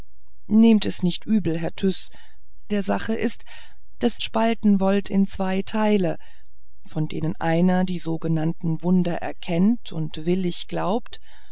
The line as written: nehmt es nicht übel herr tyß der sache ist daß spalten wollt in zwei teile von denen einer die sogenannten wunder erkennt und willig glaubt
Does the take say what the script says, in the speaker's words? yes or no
yes